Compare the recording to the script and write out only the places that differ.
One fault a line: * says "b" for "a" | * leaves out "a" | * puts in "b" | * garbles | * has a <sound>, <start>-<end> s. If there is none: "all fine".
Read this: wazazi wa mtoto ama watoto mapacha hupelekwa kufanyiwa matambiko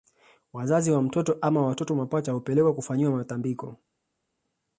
all fine